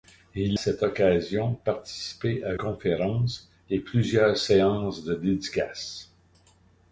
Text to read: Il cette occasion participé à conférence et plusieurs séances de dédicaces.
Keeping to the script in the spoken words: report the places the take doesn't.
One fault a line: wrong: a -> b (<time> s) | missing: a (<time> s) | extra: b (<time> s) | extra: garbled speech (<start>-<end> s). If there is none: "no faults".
no faults